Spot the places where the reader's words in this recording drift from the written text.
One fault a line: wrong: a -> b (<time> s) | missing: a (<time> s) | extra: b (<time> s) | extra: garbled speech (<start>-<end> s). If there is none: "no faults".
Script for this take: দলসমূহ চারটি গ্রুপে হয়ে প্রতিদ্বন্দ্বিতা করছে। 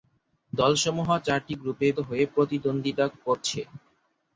no faults